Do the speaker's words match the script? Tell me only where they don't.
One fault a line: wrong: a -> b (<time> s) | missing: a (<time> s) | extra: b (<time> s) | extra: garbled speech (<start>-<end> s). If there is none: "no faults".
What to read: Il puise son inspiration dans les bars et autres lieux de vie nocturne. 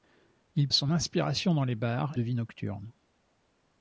missing: puise (0.7 s)
missing: et autres lieux (2.1 s)